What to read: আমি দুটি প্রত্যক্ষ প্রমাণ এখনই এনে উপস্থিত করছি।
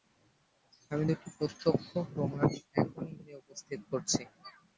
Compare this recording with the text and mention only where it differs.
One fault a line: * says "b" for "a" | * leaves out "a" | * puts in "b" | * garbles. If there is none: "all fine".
all fine